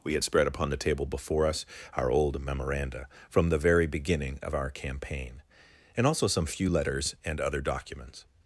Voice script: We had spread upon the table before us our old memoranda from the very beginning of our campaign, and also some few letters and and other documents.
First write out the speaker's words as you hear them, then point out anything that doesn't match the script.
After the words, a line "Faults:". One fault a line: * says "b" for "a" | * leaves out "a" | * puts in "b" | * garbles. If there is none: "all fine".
We had spread upon the table before us our old memoranda from the very beginning of our campaign, and also some few letters and other documents.
Faults:
* leaves out "and"